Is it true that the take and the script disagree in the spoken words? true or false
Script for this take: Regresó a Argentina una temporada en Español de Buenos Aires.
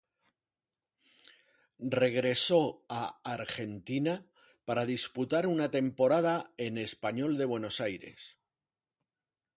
true